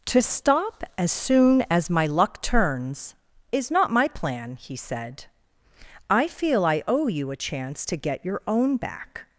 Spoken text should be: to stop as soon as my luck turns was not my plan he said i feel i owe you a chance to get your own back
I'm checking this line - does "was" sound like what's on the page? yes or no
no